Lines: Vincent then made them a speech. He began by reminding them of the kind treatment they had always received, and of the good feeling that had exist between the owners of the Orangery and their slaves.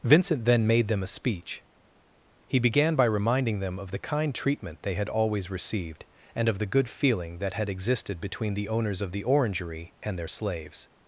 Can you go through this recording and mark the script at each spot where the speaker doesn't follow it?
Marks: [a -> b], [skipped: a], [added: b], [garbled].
Vincent then made them a speech. He began by reminding them of the kind treatment they had always received, and of the good feeling that had [exist -> existed] between the owners of the Orangery and their slaves.